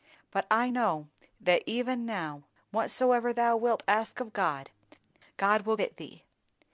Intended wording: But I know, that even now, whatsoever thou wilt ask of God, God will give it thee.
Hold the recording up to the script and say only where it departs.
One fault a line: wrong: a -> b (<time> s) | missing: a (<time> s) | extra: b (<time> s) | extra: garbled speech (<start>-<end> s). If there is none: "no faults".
missing: give (5.7 s)